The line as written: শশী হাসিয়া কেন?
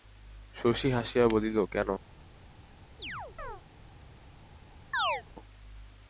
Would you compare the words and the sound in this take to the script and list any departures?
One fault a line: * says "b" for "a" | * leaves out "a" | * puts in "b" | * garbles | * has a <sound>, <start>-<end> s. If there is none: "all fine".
* puts in "বলিল"
* has a chirp, 3.0-3.6 s
* has a chirp, 4.9-5.2 s